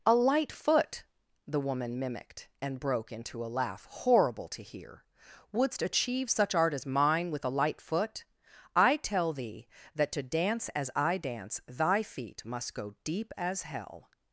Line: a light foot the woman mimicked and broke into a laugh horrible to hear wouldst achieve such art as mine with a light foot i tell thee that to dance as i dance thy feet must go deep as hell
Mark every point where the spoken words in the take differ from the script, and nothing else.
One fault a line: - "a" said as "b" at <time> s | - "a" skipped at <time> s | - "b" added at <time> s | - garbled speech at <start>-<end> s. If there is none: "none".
none